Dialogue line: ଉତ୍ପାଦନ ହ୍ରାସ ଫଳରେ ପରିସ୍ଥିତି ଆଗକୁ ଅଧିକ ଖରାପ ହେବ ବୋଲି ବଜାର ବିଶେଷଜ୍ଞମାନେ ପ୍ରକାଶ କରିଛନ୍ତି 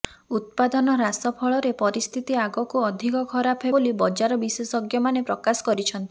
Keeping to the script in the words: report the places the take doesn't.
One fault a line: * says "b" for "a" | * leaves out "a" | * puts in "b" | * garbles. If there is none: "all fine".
* leaves out "ହେବ"